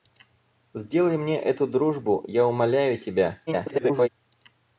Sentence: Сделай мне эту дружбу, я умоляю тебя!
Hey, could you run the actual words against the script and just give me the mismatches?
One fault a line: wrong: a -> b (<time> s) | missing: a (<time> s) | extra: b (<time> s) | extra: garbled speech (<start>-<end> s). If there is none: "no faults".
extra: garbled speech (3.5-4.1 s)